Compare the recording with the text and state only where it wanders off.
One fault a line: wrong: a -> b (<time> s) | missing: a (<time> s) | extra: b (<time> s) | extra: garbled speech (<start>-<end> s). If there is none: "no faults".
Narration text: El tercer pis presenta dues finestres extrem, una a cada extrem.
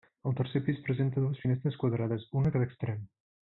wrong: extrem -> quadrades (1.8 s)